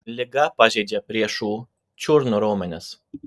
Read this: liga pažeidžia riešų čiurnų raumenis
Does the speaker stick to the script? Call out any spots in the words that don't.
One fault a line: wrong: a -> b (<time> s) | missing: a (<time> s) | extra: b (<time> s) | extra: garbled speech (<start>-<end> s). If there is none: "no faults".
no faults